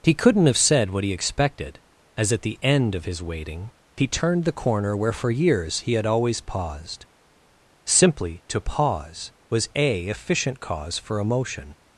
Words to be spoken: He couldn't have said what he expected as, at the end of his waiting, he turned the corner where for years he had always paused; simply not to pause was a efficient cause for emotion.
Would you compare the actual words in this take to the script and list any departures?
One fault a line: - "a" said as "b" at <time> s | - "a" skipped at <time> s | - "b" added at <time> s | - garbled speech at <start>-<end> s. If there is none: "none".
- "not" skipped at 8.4 s